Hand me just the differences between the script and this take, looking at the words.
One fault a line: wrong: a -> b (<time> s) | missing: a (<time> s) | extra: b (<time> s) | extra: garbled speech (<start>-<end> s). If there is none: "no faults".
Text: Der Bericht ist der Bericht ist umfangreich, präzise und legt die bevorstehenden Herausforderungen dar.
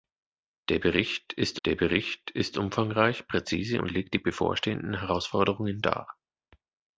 no faults